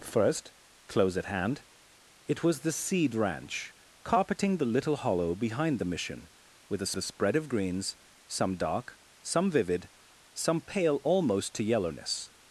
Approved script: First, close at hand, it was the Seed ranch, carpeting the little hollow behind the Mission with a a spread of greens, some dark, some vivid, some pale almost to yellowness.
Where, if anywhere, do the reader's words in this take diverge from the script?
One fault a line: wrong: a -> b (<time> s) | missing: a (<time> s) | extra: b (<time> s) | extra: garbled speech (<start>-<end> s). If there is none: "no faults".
no faults